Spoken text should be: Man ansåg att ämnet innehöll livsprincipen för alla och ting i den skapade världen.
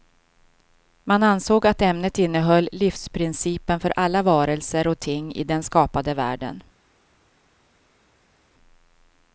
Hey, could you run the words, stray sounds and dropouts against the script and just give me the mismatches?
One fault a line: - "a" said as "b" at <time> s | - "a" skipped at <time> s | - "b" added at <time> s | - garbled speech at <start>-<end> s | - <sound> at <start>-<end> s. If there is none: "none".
- "varelser" added at 4.2 s